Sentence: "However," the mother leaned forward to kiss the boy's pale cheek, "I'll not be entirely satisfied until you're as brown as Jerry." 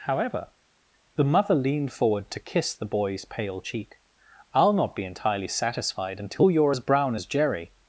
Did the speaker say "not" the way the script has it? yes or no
yes